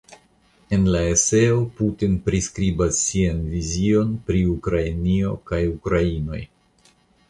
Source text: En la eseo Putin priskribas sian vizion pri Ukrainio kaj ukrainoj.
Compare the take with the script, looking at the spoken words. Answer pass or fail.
pass